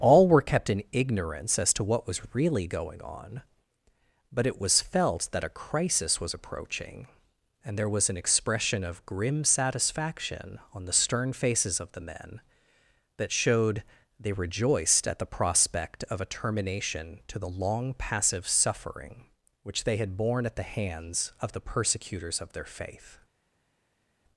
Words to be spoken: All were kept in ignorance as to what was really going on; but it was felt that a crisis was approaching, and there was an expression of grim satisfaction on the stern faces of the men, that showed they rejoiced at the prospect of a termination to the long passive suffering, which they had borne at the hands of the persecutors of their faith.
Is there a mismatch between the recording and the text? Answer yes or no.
no